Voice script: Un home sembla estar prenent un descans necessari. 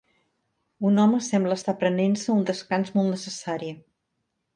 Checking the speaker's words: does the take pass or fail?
fail